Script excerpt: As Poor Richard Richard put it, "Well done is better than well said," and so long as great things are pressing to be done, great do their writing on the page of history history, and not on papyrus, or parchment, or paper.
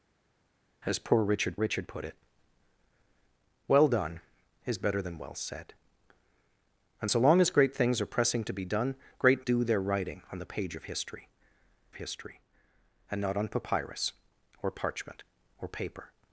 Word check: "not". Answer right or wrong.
right